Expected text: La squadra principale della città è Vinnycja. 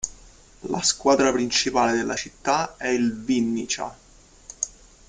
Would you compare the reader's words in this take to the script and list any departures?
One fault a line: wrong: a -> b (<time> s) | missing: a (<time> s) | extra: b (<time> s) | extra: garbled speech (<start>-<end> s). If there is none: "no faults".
extra: il (2.9 s)